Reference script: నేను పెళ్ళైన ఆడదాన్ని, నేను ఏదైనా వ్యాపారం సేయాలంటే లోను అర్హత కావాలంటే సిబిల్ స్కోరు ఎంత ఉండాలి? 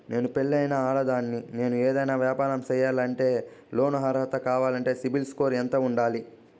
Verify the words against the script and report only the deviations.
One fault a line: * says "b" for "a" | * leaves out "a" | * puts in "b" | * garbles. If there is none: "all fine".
all fine